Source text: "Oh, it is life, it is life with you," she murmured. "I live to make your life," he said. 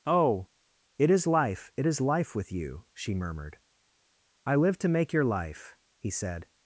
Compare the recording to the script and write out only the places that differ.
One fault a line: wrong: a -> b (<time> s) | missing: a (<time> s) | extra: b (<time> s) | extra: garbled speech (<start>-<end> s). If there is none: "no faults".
no faults